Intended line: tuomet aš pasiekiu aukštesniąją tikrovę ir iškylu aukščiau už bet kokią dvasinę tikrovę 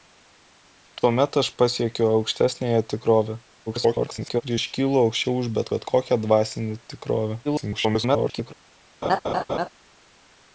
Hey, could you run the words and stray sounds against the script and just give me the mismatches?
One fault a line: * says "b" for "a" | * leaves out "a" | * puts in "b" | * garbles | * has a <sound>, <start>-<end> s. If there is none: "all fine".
* garbles
* puts in "bet"
* garbles
* has a laugh, 9.0-9.7 s